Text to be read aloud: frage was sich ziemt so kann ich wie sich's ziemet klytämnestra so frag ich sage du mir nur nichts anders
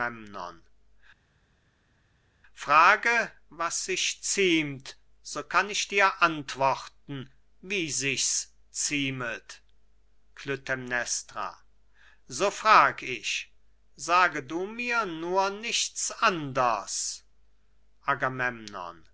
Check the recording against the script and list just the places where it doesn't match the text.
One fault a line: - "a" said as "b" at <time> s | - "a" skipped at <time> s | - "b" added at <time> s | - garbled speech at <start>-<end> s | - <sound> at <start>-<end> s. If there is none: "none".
- "dir antworten" added at 5.9 s